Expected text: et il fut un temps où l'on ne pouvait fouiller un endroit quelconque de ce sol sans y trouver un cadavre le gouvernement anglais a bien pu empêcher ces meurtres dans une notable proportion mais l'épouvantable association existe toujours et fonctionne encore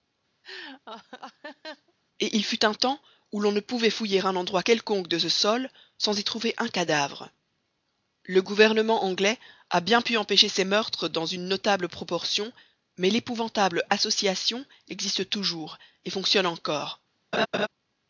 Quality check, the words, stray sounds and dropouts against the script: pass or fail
fail